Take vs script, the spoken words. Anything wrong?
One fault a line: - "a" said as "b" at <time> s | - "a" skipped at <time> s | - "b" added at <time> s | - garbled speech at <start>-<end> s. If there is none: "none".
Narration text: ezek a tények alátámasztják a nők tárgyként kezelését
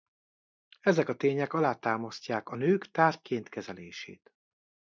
none